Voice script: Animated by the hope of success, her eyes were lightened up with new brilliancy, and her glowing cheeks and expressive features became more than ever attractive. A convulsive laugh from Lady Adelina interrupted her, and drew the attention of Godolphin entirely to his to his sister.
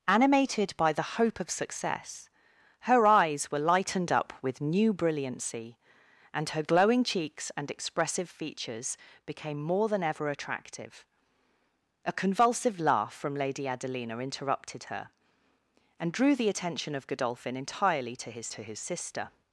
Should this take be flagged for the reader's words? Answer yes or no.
no